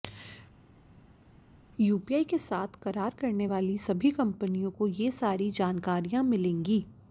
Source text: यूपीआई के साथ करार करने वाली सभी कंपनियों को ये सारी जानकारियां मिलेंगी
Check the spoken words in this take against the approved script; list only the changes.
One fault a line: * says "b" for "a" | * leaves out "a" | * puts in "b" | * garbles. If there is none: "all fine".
all fine